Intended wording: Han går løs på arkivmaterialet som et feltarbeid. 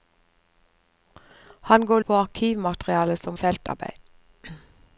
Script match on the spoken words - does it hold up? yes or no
no